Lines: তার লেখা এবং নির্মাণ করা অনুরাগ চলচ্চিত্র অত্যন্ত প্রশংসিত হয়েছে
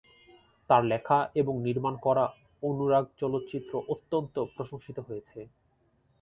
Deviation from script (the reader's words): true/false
false